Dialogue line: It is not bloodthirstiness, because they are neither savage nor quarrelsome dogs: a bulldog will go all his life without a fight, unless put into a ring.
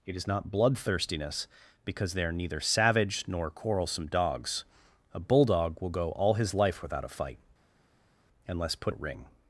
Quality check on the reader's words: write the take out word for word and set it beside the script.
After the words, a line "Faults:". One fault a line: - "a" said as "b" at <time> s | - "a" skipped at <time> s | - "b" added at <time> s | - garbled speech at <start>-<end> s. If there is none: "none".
It is not bloodthirstiness, because they are neither savage nor quarrelsome dogs: a bulldog will go all his life without a fight, unless put a ring.
Faults:
- "into" skipped at 8.9 s